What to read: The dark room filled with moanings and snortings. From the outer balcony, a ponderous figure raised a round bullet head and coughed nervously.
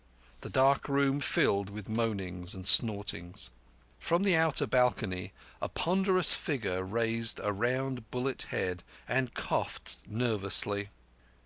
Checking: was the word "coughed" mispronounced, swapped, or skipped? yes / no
no